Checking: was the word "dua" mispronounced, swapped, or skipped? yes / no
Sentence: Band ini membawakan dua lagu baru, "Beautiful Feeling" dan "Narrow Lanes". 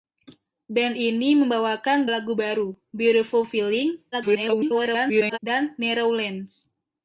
yes